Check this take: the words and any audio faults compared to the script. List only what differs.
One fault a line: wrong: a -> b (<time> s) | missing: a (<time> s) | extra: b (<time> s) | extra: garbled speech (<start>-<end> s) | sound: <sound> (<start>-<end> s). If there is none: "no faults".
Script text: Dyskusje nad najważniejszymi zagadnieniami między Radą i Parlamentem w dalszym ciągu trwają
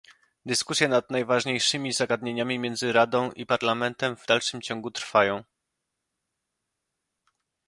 no faults